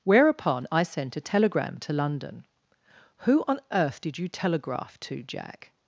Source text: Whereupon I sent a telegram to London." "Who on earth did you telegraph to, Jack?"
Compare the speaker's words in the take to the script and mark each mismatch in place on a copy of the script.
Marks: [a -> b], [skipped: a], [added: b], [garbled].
Whereupon I sent a telegram to London." "Who on earth did you telegraph to, Jack?"